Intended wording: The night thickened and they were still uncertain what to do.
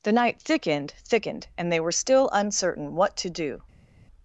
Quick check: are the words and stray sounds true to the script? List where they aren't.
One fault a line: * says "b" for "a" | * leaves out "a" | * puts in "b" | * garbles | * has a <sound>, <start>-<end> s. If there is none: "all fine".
* puts in "thickened"